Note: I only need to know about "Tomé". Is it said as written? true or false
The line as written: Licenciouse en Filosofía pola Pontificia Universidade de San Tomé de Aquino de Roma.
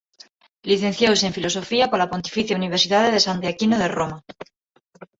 false